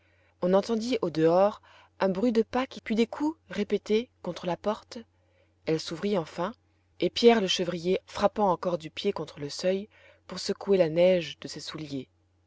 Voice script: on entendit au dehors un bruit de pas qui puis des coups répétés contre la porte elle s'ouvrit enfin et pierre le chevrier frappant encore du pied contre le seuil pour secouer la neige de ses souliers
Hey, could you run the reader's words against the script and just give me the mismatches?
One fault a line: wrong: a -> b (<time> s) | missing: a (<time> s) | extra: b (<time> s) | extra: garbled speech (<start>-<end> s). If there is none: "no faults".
no faults